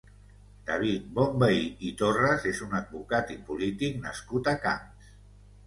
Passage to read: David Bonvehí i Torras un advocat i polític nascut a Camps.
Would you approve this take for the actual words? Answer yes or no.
no